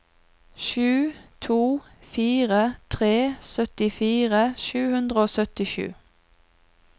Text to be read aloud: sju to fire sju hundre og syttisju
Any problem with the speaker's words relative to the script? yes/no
yes